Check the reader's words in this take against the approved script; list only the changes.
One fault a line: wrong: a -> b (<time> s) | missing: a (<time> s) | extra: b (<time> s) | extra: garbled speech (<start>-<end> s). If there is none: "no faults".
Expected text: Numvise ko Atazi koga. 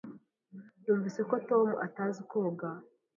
extra: Tom (1.5 s)